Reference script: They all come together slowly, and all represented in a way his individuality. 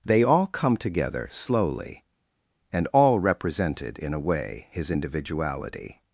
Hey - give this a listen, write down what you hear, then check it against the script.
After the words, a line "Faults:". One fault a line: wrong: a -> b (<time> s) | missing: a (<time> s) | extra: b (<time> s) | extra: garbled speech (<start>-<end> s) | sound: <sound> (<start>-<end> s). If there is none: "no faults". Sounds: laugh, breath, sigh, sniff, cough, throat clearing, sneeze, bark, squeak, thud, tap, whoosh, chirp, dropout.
They all come together slowly, and all represented in a way his individuality.
Faults:
no faults